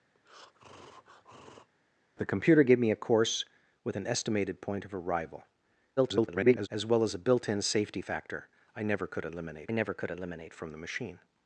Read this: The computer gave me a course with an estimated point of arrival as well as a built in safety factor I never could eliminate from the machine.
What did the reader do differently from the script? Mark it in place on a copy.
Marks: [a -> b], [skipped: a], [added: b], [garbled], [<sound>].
[breath] The computer gave me a course with an estimated point of arrival [garbled] as well as a built in safety factor I never could eliminate [added: never could eliminate] from the machine.